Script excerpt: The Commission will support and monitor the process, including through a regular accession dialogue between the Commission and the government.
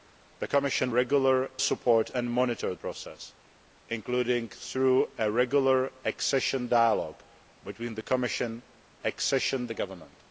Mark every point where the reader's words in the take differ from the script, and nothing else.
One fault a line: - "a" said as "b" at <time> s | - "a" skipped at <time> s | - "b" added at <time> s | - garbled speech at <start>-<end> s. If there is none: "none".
- "will" said as "regular" at 0.9 s
- "the" skipped at 2.7 s
- "and" said as "accession" at 9.0 s